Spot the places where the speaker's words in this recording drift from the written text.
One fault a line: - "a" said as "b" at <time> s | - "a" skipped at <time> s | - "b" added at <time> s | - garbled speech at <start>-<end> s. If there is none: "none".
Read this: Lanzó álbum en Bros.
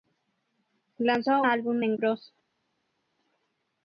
none